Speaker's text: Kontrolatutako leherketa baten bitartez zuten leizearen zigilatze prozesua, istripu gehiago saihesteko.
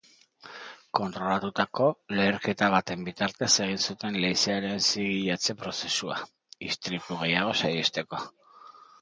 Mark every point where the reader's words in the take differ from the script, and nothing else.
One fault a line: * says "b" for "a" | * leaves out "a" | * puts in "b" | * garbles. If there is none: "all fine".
* puts in "egin"